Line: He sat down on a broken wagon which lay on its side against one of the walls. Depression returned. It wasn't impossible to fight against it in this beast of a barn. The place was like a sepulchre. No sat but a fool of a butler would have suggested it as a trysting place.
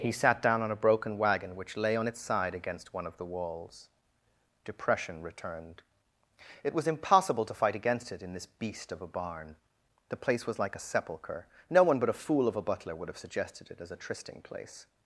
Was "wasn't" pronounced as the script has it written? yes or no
no